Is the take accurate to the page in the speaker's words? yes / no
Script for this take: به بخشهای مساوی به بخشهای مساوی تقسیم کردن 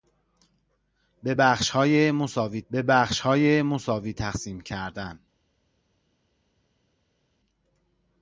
yes